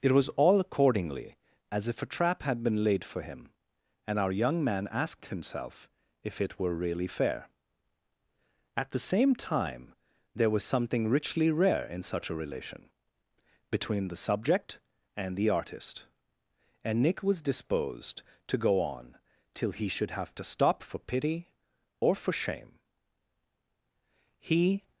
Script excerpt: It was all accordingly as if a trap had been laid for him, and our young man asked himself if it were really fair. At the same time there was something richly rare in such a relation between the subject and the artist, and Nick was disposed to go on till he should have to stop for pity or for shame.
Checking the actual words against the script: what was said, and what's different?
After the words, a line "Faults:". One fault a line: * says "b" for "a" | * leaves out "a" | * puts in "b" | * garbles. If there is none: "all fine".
It was all accordingly as if a trap had been laid for him, and our young man asked himself if it were really fair. At the same time there was something richly rare in such a relation between the subject and the artist, and Nick was disposed to go on till he should have to stop for pity or for shame. He
Faults:
* puts in "He"